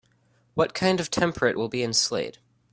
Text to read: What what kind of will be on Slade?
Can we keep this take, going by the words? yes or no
no